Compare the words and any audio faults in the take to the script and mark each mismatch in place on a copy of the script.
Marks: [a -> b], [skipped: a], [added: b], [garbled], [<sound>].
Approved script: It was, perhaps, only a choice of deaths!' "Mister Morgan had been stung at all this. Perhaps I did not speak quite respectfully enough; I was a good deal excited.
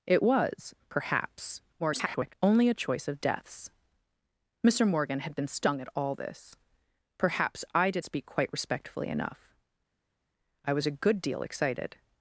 It was, perhaps, [garbled] only a choice of deaths!' "Mister Morgan had been stung at all this. Perhaps I did [skipped: not] speak quite respectfully enough; I was a good deal excited.